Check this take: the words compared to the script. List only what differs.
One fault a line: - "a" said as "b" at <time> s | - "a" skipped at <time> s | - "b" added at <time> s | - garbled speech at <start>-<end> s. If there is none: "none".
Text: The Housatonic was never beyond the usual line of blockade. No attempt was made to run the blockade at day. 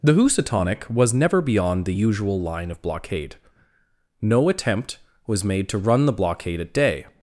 none